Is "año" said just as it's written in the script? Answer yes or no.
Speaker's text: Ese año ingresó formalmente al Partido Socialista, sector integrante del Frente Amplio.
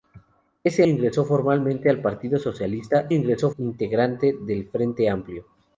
no